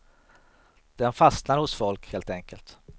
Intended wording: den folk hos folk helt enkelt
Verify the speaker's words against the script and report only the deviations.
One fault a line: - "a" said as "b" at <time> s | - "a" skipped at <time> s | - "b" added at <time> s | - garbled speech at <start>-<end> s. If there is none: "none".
- "folk" said as "fastnar" at 1.1 s